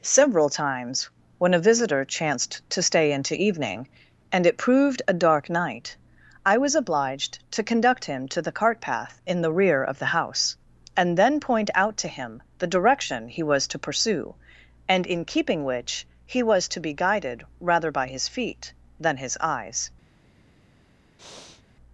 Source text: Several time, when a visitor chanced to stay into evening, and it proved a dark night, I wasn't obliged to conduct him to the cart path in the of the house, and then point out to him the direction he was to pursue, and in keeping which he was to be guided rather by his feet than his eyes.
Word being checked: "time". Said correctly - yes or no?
no